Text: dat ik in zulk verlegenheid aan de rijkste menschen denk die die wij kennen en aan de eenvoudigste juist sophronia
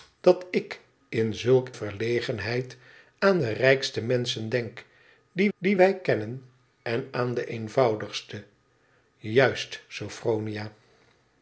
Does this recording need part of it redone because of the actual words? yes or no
no